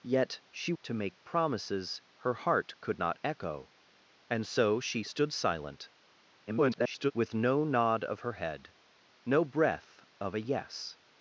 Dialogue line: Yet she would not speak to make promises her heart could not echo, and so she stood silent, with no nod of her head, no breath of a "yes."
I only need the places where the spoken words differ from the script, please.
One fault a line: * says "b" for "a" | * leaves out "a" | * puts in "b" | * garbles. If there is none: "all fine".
* leaves out "would not speak"
* garbles